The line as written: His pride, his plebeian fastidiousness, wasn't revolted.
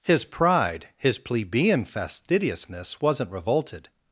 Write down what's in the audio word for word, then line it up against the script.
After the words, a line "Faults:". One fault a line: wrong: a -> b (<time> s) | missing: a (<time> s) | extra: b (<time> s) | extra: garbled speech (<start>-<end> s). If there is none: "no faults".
His pride, his plebeian fastidiousness, wasn't revolted.
Faults:
no faults